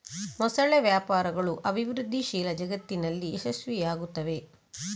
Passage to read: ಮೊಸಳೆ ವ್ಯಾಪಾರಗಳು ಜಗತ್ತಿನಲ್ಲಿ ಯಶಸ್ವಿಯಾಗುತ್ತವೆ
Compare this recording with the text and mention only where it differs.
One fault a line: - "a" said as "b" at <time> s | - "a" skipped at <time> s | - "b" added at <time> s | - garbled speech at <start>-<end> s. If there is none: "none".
- "ಅಭಿವೃದ್ಧಿಶೀಲ" added at 1.7 s